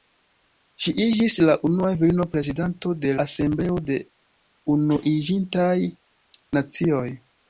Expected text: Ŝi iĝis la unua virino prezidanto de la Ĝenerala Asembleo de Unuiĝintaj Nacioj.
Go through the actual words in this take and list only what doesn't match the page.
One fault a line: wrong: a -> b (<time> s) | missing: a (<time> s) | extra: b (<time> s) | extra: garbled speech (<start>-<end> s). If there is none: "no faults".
missing: la Ĝenerala (3.1 s)